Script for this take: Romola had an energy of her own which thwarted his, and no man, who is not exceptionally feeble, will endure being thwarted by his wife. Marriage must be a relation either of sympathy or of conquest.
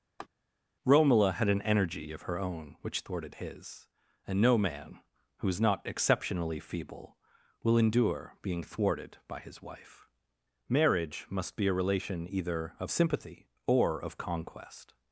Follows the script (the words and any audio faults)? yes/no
no